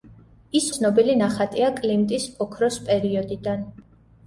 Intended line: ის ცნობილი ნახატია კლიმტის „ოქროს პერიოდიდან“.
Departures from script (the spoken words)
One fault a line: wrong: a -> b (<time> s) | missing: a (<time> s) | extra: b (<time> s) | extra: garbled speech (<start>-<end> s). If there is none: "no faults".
no faults